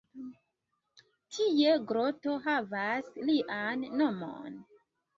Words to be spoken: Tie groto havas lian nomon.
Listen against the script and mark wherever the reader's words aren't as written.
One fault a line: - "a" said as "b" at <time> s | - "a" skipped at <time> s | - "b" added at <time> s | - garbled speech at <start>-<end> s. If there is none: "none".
none